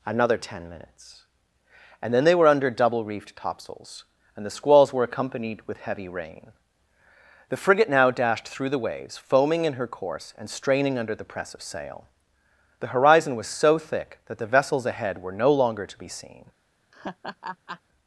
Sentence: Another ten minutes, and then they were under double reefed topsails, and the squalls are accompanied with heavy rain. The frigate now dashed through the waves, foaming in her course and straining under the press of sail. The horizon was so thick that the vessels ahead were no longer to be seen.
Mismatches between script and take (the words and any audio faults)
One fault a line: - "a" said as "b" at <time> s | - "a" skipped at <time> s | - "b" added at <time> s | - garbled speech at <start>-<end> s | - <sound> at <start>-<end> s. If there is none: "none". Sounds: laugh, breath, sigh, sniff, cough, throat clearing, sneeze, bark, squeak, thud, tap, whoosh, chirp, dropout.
- "are" said as "were" at 4.9 s
- laugh at 16.9-17.8 s